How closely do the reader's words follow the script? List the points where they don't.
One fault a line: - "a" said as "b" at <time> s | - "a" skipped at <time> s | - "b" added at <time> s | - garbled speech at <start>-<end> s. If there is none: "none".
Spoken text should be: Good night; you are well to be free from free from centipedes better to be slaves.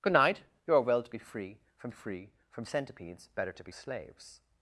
none